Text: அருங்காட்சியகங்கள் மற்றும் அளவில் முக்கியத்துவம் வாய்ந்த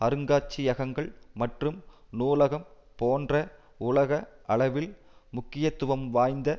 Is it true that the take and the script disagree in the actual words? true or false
true